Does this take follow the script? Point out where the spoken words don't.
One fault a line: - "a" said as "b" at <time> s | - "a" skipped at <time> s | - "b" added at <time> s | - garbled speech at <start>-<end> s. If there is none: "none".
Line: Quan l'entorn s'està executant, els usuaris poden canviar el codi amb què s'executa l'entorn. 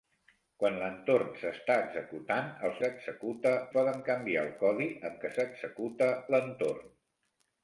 - "usuaris" said as "s'executa" at 2.8 s